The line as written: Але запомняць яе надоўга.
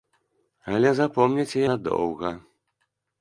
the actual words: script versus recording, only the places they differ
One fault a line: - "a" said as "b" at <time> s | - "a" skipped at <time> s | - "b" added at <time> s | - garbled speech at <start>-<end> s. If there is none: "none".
- "яе" skipped at 1.6 s